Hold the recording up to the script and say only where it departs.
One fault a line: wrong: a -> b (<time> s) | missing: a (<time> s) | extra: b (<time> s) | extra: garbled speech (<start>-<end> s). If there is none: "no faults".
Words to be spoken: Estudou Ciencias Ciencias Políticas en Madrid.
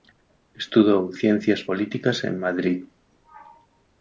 missing: Ciencias (1.6 s)